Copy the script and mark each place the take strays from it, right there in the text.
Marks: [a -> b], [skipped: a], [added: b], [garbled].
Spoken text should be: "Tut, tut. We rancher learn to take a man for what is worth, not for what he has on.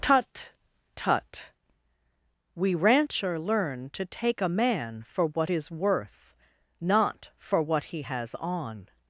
"Tut, tut. We rancher learn to take a man for what is worth, not for what he has on.